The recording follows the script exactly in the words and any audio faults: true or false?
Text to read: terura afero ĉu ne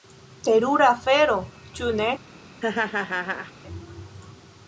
false